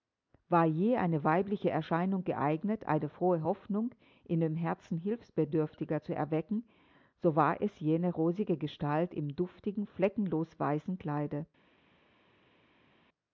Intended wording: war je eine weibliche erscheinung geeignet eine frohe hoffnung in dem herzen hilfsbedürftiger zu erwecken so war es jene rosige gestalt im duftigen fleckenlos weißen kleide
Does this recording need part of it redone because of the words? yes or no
no